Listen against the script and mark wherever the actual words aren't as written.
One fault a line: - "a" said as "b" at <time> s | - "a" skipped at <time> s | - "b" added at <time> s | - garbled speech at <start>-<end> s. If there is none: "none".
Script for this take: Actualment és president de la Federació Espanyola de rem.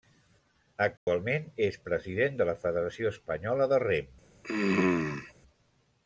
none